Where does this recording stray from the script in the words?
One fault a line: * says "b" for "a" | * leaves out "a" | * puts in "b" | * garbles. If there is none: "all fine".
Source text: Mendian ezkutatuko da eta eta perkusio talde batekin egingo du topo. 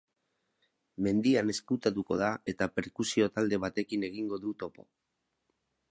* leaves out "eta"